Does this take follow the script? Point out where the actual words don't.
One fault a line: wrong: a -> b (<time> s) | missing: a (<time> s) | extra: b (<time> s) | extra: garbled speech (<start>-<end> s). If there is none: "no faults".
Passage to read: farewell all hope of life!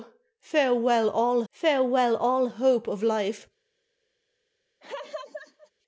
extra: farewell all (1.5 s)